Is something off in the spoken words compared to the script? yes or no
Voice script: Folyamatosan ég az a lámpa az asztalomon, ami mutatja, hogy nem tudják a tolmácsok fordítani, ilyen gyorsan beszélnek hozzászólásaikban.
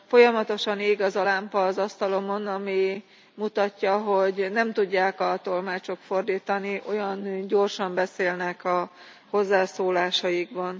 yes